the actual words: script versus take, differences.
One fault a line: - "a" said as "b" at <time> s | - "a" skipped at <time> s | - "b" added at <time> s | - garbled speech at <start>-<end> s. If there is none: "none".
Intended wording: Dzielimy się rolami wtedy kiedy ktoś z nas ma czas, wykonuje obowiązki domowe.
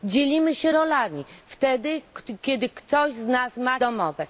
- "czas wykonuje obowiązki" skipped at 3.8 s